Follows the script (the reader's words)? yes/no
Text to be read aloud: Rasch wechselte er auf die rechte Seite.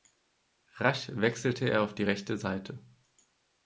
yes